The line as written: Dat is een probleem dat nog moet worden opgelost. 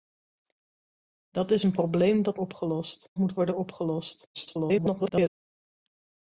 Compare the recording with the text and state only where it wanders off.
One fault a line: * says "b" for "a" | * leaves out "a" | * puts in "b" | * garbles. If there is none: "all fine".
* says "opgelost" for "nog"
* garbles